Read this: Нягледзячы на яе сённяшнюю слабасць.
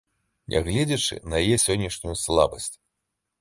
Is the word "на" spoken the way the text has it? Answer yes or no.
yes